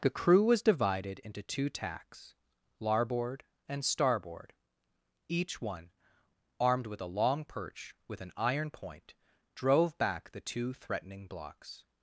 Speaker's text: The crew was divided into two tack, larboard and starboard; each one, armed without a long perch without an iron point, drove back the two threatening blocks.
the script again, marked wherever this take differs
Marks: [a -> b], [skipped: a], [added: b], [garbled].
The crew was divided into two [tack, -> tacks] larboard and starboard; each one, armed [without -> with] a long perch [without -> with] an iron point, drove back the two threatening blocks.